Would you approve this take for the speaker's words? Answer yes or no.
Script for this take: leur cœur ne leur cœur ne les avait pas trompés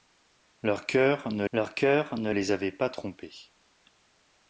yes